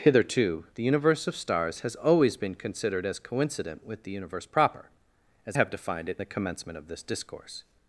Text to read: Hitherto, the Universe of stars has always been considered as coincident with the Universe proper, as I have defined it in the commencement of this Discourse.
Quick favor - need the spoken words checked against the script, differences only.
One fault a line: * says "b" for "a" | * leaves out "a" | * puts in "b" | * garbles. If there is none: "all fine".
* leaves out "I"
* leaves out "in"